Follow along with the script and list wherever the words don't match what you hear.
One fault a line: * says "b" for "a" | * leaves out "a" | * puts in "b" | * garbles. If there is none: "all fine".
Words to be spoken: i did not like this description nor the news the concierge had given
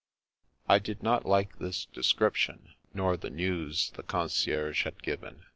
all fine